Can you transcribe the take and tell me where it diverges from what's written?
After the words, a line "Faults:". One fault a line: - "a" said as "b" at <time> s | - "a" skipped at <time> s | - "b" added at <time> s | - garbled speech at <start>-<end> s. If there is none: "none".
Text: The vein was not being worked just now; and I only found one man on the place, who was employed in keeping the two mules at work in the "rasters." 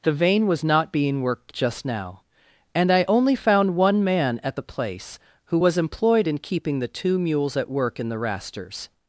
The vein was not being worked just now; and I only found one man at the place, who was employed in keeping the two mules at work in the "rasters."
Faults:
- "on" said as "at" at 4.4 s